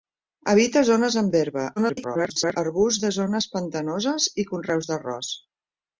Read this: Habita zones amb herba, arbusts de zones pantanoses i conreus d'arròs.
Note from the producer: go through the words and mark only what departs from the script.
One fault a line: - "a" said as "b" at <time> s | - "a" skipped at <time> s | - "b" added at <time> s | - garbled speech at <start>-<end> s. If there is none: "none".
- garbled speech at 1.8-2.6 s